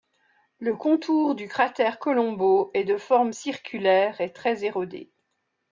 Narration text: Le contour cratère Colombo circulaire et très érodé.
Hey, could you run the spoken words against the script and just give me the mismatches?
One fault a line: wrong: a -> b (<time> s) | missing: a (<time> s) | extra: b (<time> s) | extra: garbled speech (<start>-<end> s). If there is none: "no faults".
extra: du (1.4 s)
extra: est de forme (2.7 s)